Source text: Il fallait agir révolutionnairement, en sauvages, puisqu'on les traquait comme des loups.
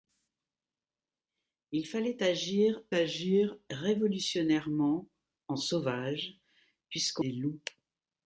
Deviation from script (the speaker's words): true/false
true